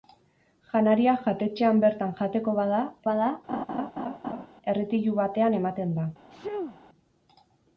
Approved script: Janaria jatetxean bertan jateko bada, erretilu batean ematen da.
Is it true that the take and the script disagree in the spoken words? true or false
true